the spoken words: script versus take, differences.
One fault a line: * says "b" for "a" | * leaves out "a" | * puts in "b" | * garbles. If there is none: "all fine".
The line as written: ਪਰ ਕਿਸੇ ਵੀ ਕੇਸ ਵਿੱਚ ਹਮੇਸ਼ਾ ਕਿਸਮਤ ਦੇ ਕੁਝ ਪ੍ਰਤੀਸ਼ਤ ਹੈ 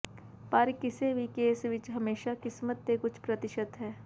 all fine